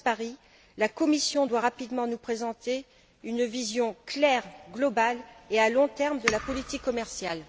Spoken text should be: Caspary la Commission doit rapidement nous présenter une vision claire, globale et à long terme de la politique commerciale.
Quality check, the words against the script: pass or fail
pass